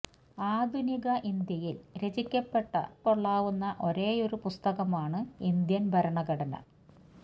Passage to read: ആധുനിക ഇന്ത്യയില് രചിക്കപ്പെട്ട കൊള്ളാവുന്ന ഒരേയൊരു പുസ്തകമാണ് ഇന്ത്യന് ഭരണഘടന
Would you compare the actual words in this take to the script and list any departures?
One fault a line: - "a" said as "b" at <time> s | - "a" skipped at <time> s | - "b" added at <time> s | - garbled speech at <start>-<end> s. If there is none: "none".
none